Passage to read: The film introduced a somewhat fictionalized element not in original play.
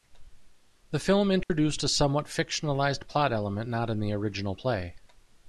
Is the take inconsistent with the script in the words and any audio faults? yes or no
yes